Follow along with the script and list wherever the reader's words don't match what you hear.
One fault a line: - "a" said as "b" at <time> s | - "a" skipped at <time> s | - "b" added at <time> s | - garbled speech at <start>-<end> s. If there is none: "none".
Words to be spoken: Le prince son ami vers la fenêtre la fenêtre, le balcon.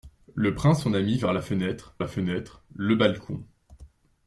none